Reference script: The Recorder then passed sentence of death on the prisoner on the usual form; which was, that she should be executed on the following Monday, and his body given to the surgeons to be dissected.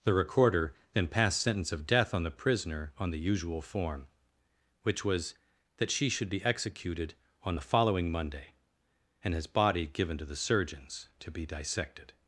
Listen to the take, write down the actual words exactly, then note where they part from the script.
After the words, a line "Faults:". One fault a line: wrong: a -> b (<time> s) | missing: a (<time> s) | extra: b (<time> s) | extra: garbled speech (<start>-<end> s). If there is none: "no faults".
The Recorder then passed sentence of death on the prisoner on the usual form; which was, that she should be executed on the following Monday, and his body given to the surgeons to be dissected.
Faults:
no faults